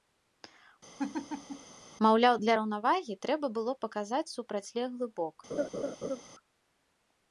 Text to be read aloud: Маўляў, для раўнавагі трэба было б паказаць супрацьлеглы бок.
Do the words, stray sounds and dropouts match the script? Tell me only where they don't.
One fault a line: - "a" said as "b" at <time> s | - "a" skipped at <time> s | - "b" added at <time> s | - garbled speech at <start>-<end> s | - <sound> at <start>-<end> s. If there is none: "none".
- laugh at 1.0-1.7 s
- laugh at 5.5-6.2 s